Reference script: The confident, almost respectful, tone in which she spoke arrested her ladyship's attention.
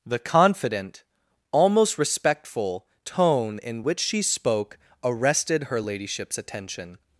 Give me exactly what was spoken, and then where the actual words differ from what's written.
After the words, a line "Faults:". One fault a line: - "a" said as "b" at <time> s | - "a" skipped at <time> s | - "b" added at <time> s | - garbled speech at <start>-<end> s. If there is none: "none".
The confident, almost respectful, tone in which she spoke arrested her ladyship's attention.
Faults:
none